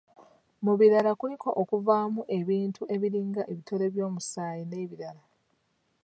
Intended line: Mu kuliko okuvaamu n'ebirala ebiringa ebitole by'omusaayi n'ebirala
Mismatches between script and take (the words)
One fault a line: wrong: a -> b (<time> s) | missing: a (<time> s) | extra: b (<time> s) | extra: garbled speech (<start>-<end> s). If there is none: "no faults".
extra: birala (0.8 s)
wrong: n'ebirala -> ebintu (2.4 s)